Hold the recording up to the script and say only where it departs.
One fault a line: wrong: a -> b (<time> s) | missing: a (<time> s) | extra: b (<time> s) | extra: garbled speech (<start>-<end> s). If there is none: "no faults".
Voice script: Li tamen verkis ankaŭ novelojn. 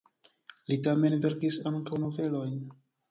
no faults